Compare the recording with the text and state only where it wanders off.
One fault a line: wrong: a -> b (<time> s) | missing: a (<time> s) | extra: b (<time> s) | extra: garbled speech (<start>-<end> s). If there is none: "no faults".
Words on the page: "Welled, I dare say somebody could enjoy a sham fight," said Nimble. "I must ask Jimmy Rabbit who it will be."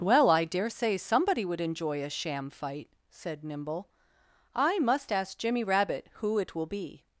wrong: Welled -> Well (0.0 s)
wrong: could -> would (1.4 s)